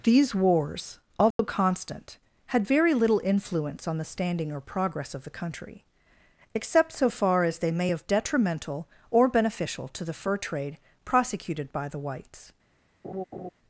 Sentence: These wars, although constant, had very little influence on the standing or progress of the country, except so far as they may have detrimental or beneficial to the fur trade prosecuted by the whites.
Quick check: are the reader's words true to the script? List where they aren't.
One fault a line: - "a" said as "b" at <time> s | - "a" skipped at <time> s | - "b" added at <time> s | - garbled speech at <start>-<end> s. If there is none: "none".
none